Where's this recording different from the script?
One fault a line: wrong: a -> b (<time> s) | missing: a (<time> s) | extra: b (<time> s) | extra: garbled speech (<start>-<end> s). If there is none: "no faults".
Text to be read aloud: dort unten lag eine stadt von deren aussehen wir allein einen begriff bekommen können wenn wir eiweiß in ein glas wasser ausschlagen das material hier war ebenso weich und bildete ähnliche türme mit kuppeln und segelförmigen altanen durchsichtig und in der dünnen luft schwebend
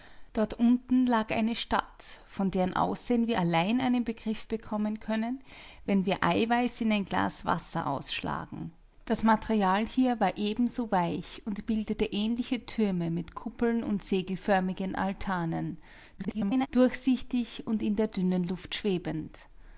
extra: garbled speech (16.2-16.7 s)